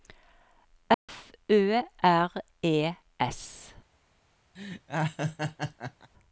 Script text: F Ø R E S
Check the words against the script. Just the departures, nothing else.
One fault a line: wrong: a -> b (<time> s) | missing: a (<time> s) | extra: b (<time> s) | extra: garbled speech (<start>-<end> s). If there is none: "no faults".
no faults